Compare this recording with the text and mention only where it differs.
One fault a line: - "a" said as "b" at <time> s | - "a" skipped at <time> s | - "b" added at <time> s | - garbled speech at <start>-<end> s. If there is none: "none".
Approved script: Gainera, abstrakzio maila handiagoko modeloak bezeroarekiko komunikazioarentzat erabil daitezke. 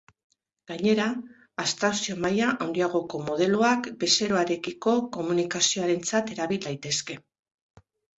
none